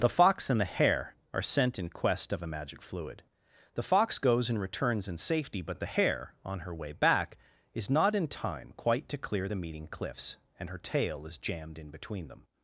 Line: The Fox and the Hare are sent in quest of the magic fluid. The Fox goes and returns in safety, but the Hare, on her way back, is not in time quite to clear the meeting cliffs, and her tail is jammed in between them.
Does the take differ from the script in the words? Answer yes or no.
yes